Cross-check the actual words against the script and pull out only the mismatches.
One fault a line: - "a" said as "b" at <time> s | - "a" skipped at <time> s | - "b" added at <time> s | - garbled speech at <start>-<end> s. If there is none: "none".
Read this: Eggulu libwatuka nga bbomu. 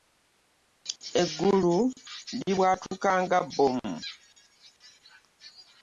none